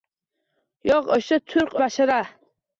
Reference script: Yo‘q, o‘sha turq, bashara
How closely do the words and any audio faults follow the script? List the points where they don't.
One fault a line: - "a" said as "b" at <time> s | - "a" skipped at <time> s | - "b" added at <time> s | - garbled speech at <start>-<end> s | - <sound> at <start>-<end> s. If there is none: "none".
none